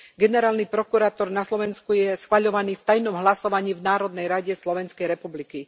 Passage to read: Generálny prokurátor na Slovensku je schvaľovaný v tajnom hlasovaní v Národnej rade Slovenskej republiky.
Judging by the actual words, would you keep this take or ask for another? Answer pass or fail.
pass